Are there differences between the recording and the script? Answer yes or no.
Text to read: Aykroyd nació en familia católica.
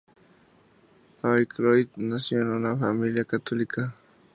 yes